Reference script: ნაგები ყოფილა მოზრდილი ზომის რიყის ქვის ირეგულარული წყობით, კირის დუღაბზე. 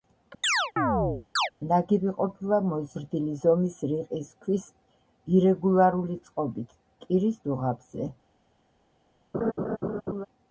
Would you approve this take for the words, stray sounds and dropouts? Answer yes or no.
no